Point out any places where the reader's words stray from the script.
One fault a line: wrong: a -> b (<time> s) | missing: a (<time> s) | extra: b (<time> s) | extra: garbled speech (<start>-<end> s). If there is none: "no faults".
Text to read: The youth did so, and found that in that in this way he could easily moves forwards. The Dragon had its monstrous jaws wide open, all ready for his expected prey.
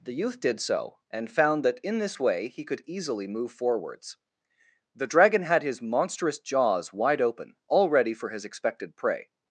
missing: that in (2.0 s)
wrong: moves -> move (3.3 s)
wrong: its -> his (5.6 s)